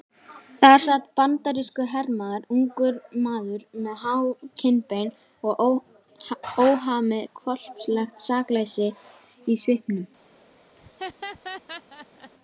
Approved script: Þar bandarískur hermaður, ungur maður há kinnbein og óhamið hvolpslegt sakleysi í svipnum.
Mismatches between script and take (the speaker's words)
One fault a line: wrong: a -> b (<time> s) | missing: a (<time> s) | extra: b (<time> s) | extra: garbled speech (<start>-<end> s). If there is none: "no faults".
extra: sat (0.8 s)
extra: með (3.9 s)